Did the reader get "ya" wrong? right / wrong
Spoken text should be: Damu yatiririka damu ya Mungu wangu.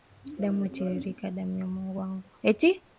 right